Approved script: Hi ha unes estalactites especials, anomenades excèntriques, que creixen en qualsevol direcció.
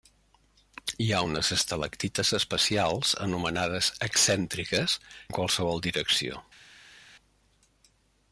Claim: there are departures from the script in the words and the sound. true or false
true